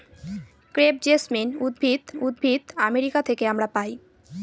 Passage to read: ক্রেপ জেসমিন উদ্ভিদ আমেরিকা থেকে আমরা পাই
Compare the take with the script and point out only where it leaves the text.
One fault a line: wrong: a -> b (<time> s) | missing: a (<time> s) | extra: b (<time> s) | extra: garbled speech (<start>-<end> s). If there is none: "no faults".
extra: উদ্ভিদ (2.2 s)